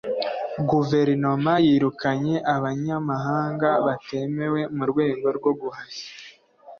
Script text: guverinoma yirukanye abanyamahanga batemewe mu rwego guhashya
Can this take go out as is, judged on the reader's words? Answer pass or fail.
fail